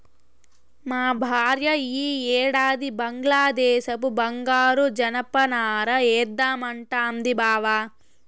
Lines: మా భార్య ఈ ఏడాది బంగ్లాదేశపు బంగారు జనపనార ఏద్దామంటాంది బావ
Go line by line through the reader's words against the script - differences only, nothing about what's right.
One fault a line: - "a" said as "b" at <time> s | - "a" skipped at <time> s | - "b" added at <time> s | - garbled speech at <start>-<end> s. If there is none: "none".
none